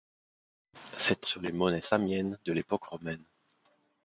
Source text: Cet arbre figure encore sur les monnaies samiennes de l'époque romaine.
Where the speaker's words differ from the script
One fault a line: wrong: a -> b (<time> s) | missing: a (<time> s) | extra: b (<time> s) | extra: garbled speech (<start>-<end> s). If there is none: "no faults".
missing: arbre figure encore (1.3 s)